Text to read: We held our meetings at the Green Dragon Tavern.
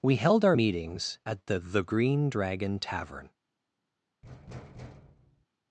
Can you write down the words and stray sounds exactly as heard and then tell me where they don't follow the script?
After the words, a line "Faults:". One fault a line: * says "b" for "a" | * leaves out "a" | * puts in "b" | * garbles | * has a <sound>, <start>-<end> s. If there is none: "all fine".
We held our meetings at the the Green Dragon Tavern.
Faults:
* puts in "the"
* has a thud, 4.2-5.5 s